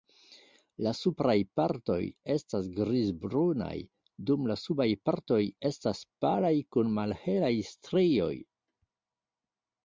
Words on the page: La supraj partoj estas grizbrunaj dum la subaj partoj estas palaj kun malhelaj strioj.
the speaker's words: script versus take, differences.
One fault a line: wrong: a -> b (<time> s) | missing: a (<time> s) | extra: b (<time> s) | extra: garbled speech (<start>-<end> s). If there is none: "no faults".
no faults